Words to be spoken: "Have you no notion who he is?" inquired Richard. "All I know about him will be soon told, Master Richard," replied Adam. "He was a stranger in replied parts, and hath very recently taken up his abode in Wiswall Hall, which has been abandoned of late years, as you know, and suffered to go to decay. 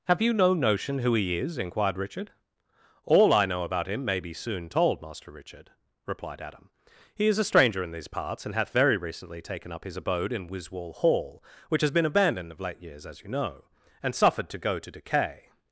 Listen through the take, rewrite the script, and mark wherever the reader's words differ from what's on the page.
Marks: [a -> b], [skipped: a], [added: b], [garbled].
"Have you no notion who he is?" inquired Richard. "All I know about him [will -> may] be soon told, Master Richard," replied Adam. "He [was -> is] a stranger in [replied -> these] parts, and hath very recently taken up his abode in Wiswall Hall, which has been abandoned of late years, as you know, and suffered to go to decay.